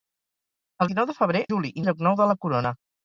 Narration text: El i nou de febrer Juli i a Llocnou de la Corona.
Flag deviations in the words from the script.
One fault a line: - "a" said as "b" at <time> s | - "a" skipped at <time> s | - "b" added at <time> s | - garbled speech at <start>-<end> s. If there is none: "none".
none